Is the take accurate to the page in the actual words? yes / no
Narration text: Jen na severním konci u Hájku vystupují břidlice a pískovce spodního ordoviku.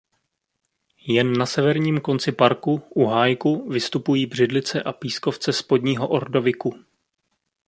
no